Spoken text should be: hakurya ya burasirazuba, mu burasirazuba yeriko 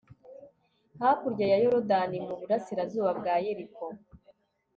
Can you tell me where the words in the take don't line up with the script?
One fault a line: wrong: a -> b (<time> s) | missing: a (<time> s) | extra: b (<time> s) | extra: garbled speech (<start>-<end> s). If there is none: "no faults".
wrong: burasirazuba -> yorudani (1.6 s)
extra: bwa (3.2 s)